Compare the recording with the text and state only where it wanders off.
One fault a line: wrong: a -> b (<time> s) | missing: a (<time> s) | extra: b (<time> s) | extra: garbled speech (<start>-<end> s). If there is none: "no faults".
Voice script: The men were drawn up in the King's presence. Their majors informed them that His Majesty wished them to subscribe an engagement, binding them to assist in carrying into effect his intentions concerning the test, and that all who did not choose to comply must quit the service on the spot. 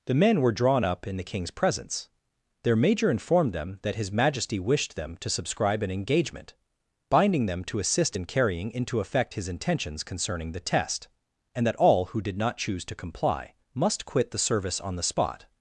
wrong: majors -> major (2.8 s)